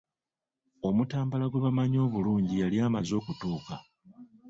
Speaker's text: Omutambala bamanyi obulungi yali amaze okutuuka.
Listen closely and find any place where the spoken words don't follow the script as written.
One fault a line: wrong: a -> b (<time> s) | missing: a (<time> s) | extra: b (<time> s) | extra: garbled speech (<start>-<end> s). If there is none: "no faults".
extra: gwe (1.5 s)